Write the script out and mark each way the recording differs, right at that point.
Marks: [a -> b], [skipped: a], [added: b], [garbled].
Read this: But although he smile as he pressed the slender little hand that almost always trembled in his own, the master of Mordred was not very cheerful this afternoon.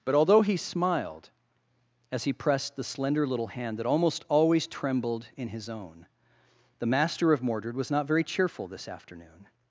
But although he [smile -> smiled] as he pressed the slender little hand that almost always trembled in his own, the master of Mordred was not very cheerful this afternoon.